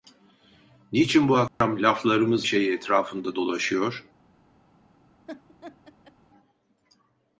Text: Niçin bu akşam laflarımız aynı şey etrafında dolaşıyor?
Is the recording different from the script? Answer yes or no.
yes